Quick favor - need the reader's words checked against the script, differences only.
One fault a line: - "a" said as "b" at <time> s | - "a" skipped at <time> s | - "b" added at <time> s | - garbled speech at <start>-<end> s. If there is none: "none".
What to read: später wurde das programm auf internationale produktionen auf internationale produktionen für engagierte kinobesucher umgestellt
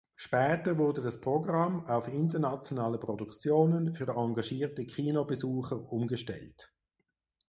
- "auf internationale produktionen" skipped at 3.9 s